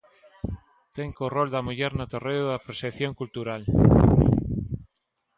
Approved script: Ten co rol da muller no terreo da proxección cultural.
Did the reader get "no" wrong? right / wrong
right